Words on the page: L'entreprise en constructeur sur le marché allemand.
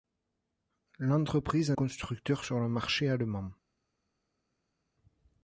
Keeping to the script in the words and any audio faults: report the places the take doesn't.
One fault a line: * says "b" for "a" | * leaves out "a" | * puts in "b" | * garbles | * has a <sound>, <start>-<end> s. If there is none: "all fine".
all fine